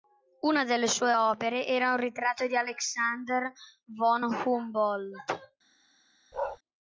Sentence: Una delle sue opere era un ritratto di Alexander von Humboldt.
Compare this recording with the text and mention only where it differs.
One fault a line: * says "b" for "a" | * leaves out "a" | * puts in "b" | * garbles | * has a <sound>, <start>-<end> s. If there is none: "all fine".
* has a bark, 6.3-6.6 s